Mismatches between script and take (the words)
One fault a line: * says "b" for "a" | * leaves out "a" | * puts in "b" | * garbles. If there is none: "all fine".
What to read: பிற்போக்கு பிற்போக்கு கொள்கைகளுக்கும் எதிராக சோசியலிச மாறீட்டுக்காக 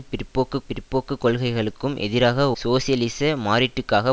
all fine